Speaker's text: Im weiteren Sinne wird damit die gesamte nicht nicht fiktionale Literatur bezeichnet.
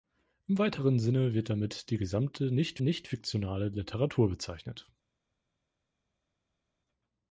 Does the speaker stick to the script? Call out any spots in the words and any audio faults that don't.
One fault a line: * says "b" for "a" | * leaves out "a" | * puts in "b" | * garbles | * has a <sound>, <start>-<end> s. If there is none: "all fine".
all fine